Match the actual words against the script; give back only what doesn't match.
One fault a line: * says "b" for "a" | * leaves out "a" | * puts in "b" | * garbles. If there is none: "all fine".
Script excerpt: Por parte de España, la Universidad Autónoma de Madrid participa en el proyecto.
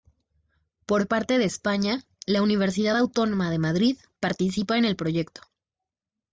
all fine